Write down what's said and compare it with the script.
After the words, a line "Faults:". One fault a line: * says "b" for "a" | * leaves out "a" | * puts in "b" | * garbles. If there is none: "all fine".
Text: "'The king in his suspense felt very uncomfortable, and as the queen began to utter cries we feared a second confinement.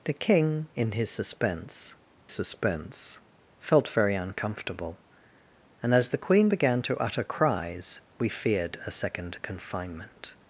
"'The king in his suspense suspense felt very uncomfortable, and as the queen began to utter cries we feared a second confinement.
Faults:
* puts in "suspense"